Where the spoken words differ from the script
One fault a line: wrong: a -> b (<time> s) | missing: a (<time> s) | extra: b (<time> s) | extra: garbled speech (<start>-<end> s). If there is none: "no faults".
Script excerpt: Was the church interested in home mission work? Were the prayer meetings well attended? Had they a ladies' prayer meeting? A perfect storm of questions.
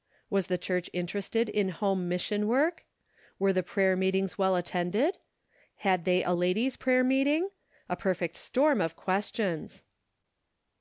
no faults